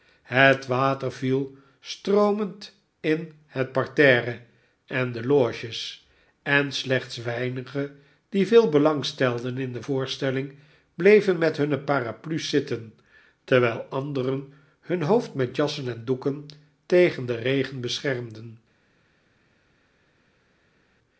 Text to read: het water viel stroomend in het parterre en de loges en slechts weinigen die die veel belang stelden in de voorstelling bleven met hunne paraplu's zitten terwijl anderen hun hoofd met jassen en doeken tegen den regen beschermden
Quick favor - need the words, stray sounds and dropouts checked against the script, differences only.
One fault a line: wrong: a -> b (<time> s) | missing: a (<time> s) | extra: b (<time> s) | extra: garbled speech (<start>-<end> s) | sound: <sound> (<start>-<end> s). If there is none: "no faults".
missing: die (8.5 s)